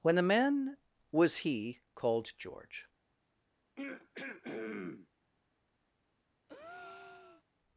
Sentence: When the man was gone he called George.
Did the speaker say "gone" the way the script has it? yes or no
no